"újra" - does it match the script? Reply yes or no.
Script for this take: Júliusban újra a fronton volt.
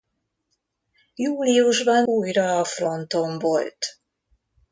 yes